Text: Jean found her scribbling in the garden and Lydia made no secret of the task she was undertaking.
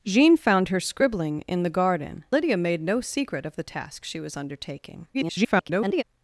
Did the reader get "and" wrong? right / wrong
wrong